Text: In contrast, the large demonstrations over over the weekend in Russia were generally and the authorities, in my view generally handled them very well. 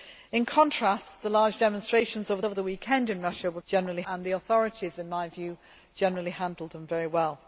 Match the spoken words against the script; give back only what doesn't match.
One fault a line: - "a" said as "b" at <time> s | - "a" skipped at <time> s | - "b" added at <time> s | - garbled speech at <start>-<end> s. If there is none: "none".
none